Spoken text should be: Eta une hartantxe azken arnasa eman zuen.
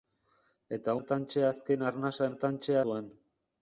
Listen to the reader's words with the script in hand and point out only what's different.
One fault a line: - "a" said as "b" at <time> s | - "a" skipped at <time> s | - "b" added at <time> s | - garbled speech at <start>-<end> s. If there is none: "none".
- "une" skipped at 0.9 s
- "eman" said as "hartantxe" at 2.3 s